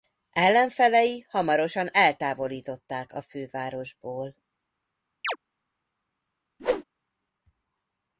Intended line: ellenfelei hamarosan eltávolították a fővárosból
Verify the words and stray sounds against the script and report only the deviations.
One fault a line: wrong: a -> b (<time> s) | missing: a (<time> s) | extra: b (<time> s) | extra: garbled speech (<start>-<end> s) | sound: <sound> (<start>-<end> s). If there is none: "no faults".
sound: chirp (5.2-5.4 s)
sound: whoosh (6.6-6.8 s)